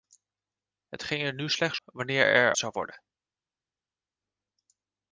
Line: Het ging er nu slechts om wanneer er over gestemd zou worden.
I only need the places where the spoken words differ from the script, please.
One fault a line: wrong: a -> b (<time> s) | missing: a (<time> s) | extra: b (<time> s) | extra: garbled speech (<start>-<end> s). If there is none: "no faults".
missing: om (1.8 s)
missing: over gestemd (2.5 s)